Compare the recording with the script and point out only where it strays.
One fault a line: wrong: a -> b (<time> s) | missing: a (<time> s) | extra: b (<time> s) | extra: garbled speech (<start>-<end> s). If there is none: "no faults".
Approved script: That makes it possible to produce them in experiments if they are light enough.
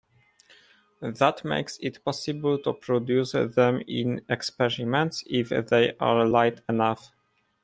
no faults